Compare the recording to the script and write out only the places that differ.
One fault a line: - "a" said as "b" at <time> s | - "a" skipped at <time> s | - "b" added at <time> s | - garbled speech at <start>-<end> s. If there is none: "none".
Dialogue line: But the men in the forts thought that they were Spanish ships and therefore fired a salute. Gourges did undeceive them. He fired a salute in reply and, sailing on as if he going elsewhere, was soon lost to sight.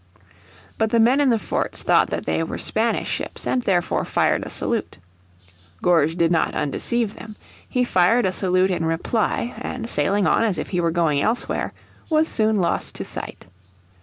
- "not" added at 6.3 s
- "were" added at 10.8 s